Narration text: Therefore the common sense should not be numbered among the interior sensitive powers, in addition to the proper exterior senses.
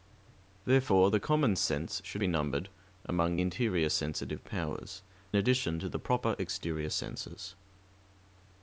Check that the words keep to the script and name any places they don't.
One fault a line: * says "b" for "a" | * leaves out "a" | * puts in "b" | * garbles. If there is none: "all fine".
* leaves out "not"
* leaves out "the"
* leaves out "in"